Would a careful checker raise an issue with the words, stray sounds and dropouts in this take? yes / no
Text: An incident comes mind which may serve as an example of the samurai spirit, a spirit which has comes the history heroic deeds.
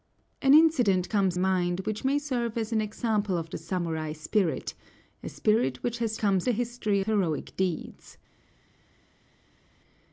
no